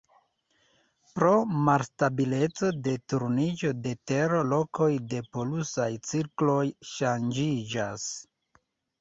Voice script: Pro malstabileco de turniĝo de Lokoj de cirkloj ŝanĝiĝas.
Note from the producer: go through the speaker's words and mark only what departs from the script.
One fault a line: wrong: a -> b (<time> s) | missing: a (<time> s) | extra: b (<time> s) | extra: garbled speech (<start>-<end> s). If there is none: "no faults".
extra: Tero (4.1 s)
extra: polusaj (5.4 s)